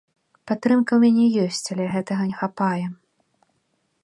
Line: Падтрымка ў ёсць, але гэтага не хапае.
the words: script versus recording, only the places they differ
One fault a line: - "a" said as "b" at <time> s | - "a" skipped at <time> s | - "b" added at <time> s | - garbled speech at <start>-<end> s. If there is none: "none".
- "мяне" added at 1.0 s